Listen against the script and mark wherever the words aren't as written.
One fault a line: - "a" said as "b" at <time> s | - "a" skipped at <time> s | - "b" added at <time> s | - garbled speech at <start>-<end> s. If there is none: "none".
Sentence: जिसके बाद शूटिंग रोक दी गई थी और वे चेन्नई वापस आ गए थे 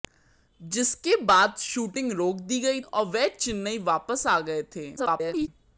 - "थी" skipped at 2.8 s
- garbled speech at 5.0-5.5 s